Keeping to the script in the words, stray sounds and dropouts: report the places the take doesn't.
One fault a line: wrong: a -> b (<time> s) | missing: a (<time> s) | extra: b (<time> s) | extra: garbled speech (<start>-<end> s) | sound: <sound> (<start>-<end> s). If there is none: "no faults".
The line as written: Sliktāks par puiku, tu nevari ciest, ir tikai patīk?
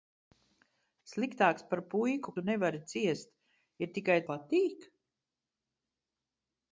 no faults